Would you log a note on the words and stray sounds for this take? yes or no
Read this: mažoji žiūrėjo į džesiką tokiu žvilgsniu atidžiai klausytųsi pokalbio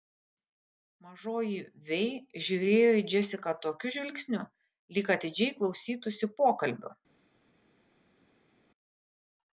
yes